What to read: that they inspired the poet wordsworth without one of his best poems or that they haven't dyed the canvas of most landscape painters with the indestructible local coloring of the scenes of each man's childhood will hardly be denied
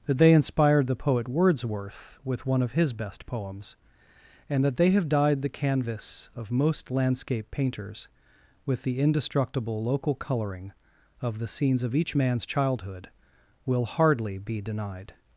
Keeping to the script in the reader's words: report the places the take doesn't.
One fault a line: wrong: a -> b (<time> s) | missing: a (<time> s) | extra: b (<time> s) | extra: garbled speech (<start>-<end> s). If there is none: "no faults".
wrong: without -> with (2.2 s)
wrong: or -> and (4.5 s)
wrong: haven't -> have (4.9 s)